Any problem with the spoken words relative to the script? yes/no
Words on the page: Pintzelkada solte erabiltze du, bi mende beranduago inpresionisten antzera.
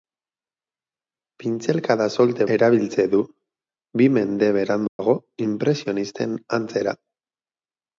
no